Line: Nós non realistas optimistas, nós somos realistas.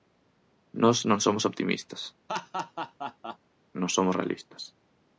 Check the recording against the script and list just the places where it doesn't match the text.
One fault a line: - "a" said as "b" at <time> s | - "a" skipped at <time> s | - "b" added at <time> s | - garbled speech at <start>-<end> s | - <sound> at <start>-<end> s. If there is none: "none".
- "realistas" said as "somos" at 1.3 s
- laugh at 2.3-3.4 s